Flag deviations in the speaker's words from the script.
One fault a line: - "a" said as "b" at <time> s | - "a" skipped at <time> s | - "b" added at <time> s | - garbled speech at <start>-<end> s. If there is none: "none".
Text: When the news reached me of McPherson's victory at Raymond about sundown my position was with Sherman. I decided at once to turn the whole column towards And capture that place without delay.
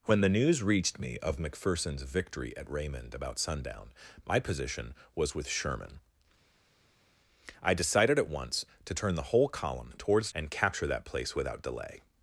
none